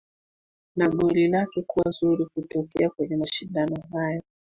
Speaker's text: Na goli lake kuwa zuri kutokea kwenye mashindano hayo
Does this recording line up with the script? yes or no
yes